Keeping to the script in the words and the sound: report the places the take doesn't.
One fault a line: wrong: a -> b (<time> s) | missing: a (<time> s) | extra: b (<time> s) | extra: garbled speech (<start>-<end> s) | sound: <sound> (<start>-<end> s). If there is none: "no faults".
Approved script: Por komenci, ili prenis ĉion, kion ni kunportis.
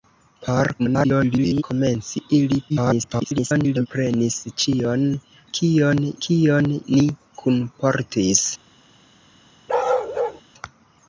extra: garbled speech (0.8-1.6 s)
extra: garbled speech (2.7-3.9 s)
extra: kion (6.3 s)
sound: bark (9.7-10.4 s)